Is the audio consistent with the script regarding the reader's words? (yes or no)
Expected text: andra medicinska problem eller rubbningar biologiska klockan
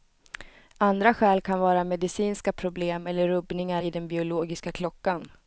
no